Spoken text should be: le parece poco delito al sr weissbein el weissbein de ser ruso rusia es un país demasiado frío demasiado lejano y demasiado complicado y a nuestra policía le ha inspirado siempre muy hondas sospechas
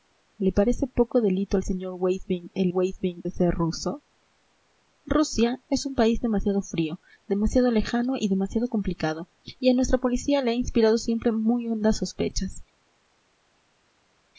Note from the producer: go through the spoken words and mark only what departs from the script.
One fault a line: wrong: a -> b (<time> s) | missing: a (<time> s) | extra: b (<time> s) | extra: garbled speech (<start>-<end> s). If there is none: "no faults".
no faults